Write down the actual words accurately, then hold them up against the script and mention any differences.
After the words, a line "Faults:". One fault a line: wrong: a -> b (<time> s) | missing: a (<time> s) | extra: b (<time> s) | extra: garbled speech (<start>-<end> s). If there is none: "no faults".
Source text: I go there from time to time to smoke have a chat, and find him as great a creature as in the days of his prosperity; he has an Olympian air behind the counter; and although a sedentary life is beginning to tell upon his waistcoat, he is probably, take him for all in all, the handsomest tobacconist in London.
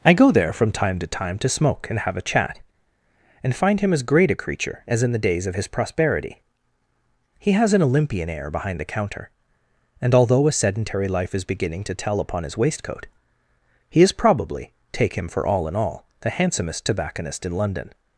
I go there from time to time to smoke and have a chat, and find him as great a creature as in the days of his prosperity; he has an Olympian air behind the counter; and although a sedentary life is beginning to tell upon his waistcoat, he is probably, take him for all in all, the handsomest tobacconist in London.
Faults:
extra: and (1.9 s)